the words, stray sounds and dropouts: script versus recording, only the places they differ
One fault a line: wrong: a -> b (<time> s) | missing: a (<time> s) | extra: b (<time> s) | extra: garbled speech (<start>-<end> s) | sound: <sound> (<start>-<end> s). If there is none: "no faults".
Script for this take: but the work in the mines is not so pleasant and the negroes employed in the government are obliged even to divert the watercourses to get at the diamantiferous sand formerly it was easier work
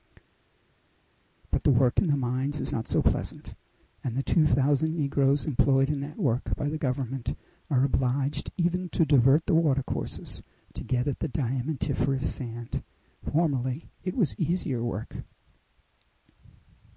extra: two thousand (4.2 s)
extra: that work by (6.0 s)